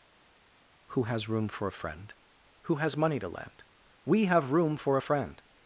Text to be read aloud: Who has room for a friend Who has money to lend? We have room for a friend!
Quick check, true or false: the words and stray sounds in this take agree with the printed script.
true